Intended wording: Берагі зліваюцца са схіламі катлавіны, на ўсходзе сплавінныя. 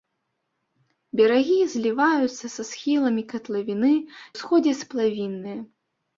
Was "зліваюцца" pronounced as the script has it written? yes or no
yes